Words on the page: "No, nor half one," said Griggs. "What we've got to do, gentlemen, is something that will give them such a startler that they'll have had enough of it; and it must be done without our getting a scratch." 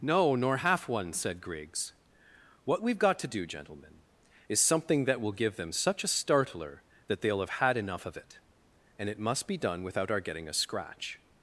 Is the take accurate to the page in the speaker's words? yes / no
yes